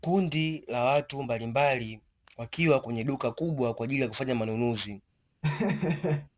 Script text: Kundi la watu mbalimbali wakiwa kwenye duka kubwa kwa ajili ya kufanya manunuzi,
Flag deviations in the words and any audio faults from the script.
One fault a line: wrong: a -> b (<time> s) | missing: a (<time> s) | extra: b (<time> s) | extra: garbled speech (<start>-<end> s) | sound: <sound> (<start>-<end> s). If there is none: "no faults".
sound: laugh (5.4-6.3 s)